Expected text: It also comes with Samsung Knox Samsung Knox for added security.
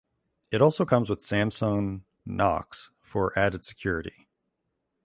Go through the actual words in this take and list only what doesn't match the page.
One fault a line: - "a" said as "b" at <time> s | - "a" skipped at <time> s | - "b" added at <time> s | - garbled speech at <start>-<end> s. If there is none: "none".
- "Samsung Knox" skipped at 2.9 s